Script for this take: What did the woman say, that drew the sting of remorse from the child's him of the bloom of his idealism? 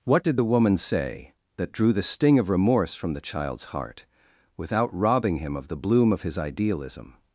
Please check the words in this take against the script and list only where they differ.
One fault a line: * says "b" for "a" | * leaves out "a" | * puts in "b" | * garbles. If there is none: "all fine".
* puts in "heart without robbing"